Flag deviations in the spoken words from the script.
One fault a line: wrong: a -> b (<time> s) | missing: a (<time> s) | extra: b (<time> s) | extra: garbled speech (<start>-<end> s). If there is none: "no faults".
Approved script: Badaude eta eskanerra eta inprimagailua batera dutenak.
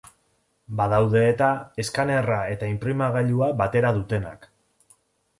no faults